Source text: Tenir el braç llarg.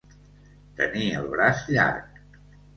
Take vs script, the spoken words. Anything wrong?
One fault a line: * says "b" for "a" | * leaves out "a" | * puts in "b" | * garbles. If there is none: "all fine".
all fine